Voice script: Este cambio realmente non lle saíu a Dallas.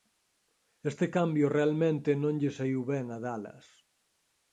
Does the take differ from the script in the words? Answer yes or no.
yes